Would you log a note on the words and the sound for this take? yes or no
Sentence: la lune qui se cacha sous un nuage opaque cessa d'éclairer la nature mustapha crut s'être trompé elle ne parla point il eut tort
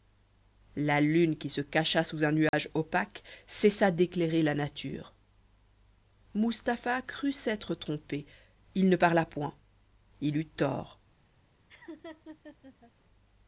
yes